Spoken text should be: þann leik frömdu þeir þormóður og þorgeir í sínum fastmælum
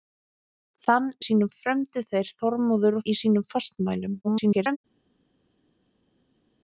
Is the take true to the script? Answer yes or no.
no